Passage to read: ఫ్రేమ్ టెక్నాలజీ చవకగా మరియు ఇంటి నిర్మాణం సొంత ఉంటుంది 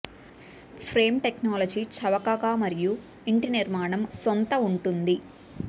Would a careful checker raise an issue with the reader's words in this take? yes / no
no